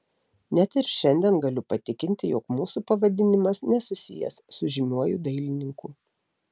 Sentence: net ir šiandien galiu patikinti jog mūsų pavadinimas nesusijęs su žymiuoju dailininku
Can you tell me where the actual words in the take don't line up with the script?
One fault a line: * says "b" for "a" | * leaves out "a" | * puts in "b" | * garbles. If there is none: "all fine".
all fine